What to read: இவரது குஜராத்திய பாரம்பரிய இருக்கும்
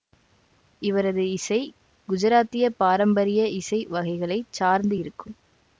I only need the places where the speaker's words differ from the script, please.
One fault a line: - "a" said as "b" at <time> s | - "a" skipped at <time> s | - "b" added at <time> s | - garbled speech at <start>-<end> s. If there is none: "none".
- "இசை" added at 1.3 s
- "இசை வகைகளை சார்ந்து" added at 3.6 s